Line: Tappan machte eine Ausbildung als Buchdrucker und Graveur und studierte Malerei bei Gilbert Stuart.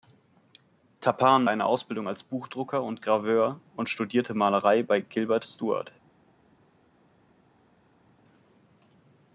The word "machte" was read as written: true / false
false